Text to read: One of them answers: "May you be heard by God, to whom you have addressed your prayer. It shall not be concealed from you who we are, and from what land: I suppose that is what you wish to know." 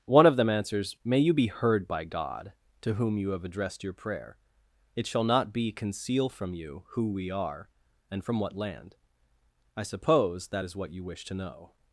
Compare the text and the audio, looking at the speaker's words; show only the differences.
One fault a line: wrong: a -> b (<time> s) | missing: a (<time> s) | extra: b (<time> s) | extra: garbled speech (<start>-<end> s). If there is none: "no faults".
wrong: concealed -> conceal (5.7 s)